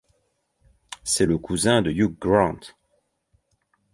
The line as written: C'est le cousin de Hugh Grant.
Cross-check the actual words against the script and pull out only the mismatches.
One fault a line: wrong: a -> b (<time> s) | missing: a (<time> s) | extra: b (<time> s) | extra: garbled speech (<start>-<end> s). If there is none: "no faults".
no faults